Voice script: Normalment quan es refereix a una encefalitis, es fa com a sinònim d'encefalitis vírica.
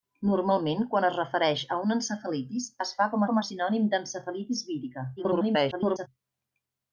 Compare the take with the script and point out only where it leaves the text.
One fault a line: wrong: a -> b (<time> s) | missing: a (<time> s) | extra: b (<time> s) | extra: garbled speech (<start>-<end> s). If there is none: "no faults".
extra: com (3.3 s)
extra: garbled speech (5.2-6.1 s)